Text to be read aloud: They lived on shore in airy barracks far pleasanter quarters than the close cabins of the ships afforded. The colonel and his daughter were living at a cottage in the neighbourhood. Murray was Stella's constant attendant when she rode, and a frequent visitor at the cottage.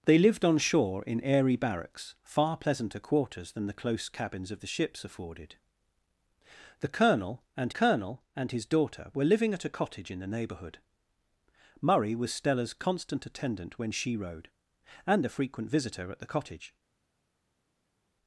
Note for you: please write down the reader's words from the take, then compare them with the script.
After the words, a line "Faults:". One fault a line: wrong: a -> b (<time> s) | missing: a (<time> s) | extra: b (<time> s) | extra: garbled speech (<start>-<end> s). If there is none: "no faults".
They lived on shore in airy barracks far pleasanter quarters than the close cabins of the ships afforded. The colonel and colonel and his daughter were living at a cottage in the neighbourhood. Murray was Stella's constant attendant when she rode, and a frequent visitor at the cottage.
Faults:
extra: colonel and (7.7 s)